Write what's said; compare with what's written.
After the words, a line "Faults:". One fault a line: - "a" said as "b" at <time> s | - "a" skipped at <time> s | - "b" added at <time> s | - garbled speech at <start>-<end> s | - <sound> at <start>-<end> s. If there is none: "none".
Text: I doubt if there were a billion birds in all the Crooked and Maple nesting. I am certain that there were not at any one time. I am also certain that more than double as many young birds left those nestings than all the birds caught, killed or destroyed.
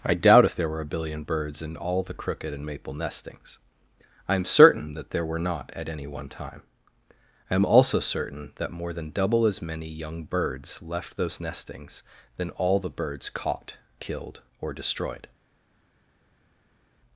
I doubt if there were a billion birds in all the Crooked and Maple nestings. I am certain that there were not at any one time. I am also certain that more than double as many young birds left those nestings than all the birds caught, killed or destroyed.
Faults:
- "nesting" said as "nestings" at 2.9 s